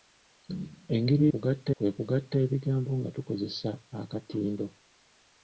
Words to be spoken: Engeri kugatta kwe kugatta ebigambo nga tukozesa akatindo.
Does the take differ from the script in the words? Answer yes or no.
no